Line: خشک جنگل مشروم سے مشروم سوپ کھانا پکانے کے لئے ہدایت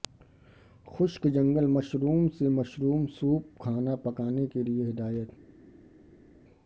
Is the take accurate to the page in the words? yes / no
yes